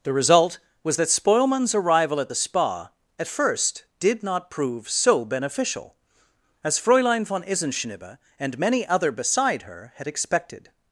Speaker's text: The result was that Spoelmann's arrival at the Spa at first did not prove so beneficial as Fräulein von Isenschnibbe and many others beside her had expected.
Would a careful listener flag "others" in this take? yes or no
yes